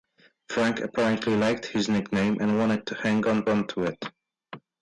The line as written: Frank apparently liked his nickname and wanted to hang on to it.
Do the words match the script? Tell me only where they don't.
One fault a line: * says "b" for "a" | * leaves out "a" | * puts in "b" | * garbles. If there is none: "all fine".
* puts in "on"